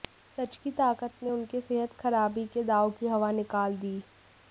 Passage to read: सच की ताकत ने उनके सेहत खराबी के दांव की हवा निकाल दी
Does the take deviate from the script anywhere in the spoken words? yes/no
no